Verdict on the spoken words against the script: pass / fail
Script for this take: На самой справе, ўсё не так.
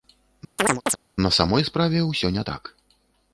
pass